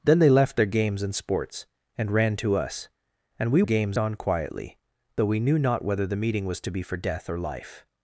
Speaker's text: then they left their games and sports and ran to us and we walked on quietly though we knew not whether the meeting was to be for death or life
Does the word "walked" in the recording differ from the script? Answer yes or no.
yes